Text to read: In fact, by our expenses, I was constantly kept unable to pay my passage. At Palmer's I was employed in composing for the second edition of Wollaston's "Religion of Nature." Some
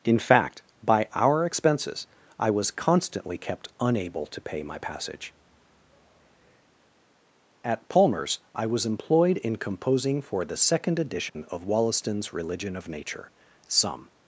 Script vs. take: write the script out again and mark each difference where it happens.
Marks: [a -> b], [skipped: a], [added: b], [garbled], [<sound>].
In fact, by our expenses, I was constantly kept unable to pay my passage. At Palmer's I was employed in composing for the second edition [dropout] of Wollaston's "Religion of Nature." Some